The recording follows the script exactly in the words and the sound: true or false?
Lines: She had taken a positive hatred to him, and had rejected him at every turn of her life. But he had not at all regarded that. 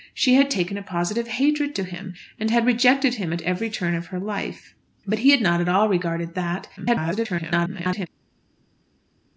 false